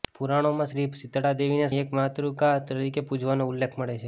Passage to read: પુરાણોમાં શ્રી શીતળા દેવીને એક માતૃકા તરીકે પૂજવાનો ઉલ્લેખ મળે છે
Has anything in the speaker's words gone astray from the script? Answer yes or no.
no